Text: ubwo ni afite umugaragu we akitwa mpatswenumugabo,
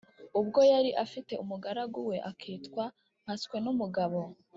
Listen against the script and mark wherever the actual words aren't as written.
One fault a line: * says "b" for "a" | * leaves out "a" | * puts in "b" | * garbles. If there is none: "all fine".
* says "yari" for "ni"